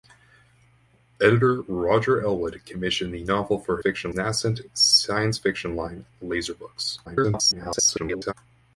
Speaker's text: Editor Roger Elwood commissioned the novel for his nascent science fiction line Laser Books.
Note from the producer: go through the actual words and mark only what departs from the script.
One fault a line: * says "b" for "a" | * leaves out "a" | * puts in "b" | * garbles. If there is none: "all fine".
* says "fiction" for "his"
* garbles